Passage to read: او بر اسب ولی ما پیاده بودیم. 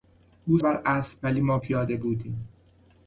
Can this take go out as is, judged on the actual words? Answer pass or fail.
pass